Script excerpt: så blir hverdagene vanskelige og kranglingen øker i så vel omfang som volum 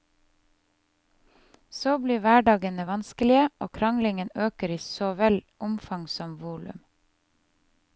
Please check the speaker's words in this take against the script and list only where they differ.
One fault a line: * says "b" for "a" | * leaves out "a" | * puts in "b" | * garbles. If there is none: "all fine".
all fine